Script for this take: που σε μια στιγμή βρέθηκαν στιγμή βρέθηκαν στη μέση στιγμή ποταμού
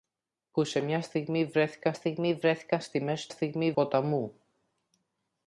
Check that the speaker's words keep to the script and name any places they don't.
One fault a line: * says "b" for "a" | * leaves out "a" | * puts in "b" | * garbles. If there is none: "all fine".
all fine